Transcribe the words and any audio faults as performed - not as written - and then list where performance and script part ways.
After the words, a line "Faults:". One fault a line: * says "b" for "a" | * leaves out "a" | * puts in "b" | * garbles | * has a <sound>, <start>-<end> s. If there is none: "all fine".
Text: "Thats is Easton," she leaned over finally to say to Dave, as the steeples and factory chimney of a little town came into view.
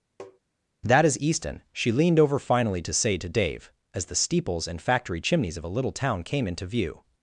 "That is Easton," she leaned over finally to say to Dave, as the steeples and factory chimneys of a little town came into view.
Faults:
* has a tap, 0.2-0.4 s
* says "That" for "Thats"
* says "chimneys" for "chimney"